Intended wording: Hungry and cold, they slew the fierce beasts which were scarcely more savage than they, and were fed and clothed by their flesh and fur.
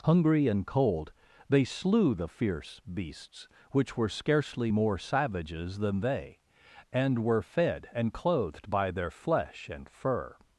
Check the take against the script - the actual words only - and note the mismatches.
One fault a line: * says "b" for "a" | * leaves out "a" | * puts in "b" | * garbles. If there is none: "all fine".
* says "savages" for "savage"